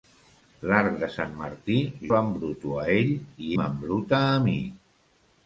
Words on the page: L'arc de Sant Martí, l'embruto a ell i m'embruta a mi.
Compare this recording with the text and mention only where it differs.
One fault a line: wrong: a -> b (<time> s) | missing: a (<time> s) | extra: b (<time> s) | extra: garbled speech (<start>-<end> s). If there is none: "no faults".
no faults